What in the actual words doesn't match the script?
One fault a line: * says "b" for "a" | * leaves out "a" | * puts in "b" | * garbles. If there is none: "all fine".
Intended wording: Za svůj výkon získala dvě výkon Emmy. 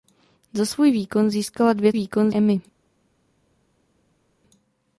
all fine